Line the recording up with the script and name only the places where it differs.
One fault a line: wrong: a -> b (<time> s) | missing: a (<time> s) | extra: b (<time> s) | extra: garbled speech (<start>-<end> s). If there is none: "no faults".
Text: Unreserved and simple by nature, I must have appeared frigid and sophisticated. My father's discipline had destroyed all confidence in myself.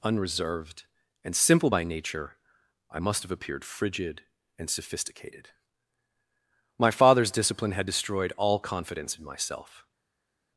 no faults